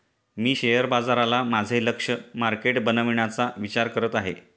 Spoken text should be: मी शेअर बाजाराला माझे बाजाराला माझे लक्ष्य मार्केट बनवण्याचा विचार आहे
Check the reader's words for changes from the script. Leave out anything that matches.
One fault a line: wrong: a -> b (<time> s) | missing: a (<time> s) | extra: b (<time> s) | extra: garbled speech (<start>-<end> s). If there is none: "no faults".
missing: बाजाराला माझे (1.8 s)
extra: करत (3.9 s)